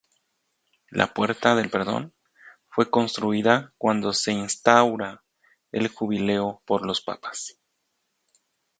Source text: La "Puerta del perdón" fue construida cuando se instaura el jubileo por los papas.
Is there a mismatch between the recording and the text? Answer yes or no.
no